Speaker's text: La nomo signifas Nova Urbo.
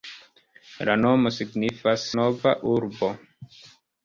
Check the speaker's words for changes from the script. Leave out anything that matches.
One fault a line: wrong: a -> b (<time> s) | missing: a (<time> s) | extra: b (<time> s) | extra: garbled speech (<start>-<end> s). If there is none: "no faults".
no faults